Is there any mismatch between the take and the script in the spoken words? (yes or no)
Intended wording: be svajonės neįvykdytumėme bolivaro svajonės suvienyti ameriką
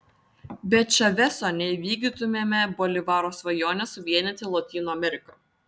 yes